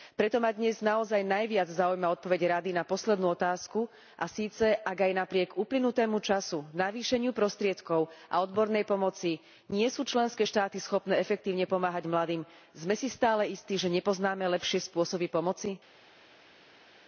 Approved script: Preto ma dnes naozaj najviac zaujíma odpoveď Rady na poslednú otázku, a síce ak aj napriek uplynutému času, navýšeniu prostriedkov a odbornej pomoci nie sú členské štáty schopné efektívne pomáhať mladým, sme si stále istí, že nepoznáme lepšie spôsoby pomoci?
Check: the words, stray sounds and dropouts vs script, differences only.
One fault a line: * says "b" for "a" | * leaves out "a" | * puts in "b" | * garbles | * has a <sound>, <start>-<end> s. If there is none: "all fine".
all fine